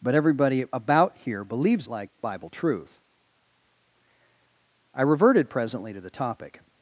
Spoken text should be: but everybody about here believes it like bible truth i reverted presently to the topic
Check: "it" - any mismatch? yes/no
yes